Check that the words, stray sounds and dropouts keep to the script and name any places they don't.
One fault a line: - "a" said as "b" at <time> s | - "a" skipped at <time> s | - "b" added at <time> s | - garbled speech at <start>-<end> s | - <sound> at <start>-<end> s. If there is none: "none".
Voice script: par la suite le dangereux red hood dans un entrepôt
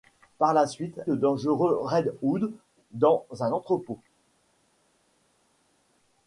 none